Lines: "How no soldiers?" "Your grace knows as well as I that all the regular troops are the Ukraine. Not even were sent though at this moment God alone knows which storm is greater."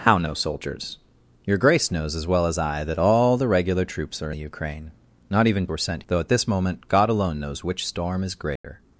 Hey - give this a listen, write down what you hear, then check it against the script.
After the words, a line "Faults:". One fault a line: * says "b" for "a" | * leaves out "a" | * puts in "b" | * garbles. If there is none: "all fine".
"How no soldiers?" "Your grace knows as well as I that all the regular troops are the Ukraine. Not even were sent though at this moment God alone knows which storm is greater."
Faults:
all fine